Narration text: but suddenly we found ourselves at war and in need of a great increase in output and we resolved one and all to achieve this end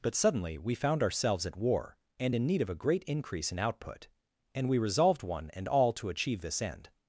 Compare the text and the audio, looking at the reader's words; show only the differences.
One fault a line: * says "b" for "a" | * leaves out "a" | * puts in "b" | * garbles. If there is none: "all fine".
all fine